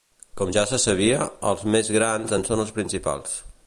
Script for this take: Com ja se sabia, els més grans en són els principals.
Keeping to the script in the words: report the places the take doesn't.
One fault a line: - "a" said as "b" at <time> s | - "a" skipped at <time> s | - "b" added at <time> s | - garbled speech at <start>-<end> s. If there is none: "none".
none